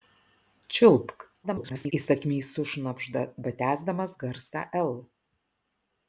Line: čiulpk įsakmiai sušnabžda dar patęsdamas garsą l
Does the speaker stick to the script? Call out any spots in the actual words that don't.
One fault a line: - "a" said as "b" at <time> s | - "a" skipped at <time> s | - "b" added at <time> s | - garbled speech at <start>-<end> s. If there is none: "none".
- garbled speech at 1.4-1.9 s
- "dar" skipped at 3.3 s